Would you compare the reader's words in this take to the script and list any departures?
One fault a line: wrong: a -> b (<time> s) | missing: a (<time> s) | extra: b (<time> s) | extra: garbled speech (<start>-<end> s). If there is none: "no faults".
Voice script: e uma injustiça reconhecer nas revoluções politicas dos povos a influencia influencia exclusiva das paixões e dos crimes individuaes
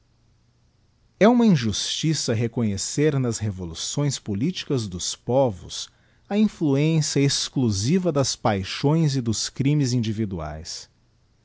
missing: influencia (7.2 s)